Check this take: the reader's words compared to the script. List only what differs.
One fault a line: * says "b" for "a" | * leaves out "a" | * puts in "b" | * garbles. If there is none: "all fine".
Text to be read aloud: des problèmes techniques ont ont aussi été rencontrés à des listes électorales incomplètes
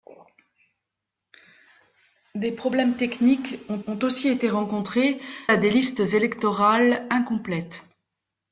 all fine